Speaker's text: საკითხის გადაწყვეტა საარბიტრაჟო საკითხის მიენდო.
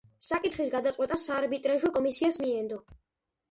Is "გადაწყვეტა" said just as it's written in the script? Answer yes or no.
yes